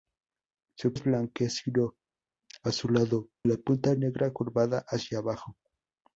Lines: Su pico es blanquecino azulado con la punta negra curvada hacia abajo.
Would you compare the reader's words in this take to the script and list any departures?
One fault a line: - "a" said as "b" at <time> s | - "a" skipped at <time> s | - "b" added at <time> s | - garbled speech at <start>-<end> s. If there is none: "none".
- "pico" skipped at 0.9 s
- "con" skipped at 3.3 s